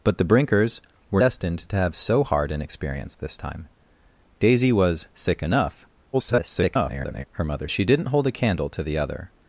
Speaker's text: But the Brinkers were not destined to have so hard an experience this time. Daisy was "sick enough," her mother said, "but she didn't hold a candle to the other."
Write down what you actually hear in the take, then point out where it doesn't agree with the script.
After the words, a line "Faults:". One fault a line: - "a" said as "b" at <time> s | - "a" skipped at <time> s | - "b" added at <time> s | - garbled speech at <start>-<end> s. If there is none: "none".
But the Brinkers were destined to have so hard an experience this time. Daisy was "sick enough," [garbled] her mother she didn't hold a candle to the other."
Faults:
- "not" skipped at 1.2 s
- garbled speech at 6.1-7.3 s
- "said but" skipped at 7.7 s